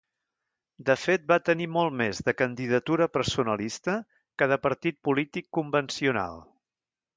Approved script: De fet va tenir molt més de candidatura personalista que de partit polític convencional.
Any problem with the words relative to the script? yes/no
no